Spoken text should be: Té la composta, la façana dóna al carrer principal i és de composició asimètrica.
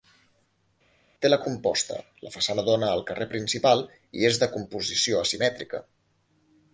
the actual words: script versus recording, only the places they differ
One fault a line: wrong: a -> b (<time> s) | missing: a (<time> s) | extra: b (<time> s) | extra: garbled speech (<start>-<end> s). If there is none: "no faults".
no faults